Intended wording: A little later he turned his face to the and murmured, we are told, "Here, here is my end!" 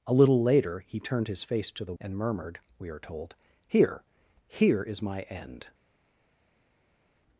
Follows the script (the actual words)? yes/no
yes